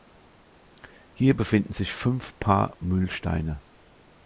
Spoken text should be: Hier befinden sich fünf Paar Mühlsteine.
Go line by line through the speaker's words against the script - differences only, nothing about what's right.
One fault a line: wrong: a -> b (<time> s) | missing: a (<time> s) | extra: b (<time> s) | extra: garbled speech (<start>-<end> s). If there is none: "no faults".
no faults